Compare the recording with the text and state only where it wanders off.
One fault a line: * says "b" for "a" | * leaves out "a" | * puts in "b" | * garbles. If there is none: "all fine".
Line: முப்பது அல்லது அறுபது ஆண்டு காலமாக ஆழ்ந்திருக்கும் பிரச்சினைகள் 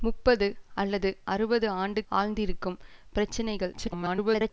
* leaves out "காலமாக"
* garbles